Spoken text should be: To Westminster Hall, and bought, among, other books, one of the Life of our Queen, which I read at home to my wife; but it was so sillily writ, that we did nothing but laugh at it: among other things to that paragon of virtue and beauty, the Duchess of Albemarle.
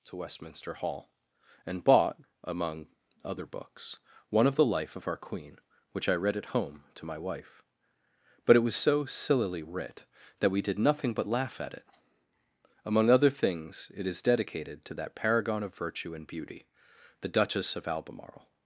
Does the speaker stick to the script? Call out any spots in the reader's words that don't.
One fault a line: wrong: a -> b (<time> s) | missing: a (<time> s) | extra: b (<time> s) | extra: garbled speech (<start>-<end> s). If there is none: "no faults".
extra: it is dedicated (13.9 s)